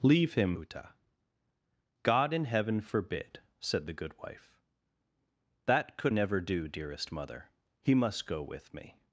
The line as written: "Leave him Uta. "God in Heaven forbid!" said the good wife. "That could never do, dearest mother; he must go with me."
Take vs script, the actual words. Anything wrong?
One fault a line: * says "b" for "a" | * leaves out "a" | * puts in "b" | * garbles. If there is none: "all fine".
all fine